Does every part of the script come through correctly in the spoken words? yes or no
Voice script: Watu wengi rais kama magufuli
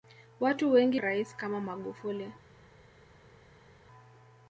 yes